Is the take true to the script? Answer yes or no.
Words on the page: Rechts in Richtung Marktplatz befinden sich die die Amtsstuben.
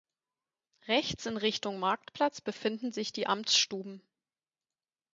no